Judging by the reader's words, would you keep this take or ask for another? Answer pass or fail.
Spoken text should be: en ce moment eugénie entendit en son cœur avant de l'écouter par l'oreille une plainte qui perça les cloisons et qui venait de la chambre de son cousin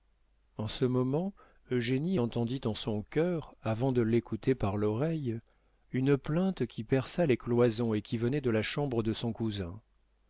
pass